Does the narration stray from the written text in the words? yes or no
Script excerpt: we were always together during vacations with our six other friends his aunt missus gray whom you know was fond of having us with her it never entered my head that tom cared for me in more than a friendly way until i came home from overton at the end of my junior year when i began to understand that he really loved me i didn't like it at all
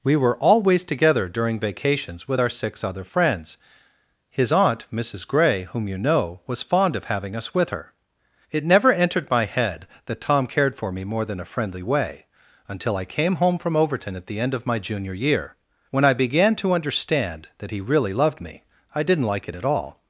yes